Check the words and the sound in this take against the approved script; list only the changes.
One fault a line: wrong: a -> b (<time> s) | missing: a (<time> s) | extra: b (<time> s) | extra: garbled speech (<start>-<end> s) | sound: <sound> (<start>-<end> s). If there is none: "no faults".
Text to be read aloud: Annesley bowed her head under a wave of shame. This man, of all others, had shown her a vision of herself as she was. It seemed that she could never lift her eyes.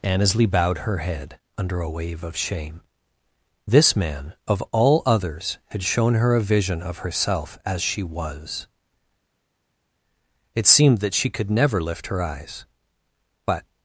extra: But (13.5 s)